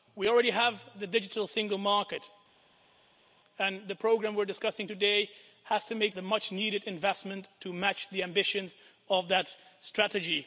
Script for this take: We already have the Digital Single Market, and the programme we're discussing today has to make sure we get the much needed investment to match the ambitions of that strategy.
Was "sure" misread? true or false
true